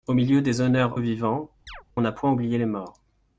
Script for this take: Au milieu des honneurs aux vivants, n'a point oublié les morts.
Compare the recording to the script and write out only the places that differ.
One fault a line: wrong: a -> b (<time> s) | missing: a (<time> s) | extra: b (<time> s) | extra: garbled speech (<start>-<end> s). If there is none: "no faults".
no faults